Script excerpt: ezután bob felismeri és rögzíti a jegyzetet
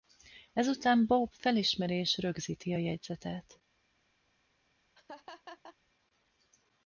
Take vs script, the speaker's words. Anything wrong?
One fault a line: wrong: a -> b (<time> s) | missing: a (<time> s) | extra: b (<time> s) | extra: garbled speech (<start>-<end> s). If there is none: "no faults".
no faults